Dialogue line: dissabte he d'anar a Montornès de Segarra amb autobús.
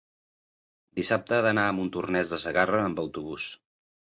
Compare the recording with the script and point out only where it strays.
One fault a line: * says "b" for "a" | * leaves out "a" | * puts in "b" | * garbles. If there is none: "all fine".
all fine